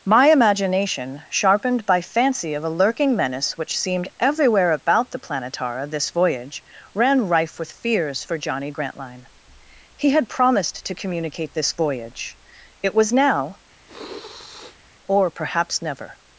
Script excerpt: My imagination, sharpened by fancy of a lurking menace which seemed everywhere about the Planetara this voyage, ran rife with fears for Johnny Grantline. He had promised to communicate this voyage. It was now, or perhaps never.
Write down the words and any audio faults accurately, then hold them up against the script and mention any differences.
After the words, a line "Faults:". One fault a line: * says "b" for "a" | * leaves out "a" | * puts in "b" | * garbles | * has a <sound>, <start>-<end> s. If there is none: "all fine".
My imagination, sharpened by fancy of a lurking menace which seemed everywhere about the Planetara this voyage, ran rife with fears for Johnny Grantline. He had promised to communicate this voyage. It was now, or perhaps never.
Faults:
* has a sniff, 13.8-14.8 s